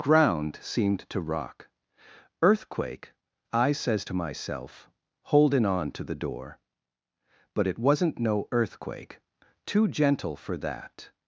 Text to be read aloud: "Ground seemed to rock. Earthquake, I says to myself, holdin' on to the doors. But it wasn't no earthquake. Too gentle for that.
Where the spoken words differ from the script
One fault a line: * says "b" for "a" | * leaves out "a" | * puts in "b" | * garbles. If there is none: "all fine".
* says "door" for "doors"